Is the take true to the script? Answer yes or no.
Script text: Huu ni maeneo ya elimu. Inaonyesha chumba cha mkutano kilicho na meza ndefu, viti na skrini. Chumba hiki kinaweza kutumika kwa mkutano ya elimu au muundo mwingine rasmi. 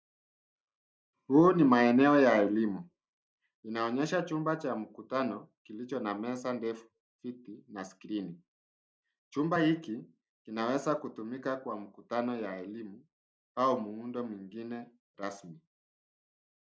yes